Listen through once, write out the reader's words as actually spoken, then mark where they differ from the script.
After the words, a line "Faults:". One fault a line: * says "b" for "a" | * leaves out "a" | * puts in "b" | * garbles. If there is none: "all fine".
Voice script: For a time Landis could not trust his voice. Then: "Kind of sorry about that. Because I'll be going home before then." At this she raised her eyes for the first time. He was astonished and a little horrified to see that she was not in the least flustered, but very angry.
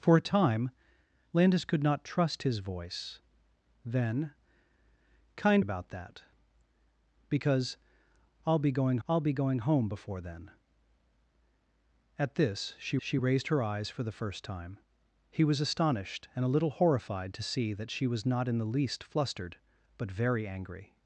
For a time Landis could not trust his voice. Then: "Kind about that. Because I'll be going I'll be going home before then." At this she she raised her eyes for the first time. He was astonished and a little horrified to see that she was not in the least flustered, but very angry.
Faults:
* leaves out "of sorry"
* puts in "I'll be going"
* puts in "she"